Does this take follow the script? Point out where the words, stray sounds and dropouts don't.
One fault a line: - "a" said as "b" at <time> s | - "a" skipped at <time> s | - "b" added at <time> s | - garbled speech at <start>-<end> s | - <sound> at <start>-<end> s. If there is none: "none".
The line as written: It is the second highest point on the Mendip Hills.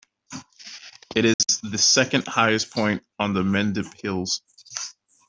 - dropout at 1.3-1.4 s